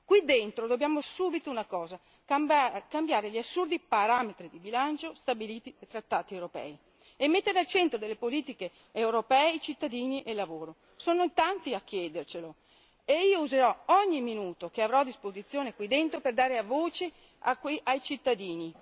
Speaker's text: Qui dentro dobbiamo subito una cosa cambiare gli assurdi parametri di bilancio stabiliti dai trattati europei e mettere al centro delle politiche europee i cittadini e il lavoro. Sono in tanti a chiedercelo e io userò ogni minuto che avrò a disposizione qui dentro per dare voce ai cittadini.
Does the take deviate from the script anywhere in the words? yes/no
no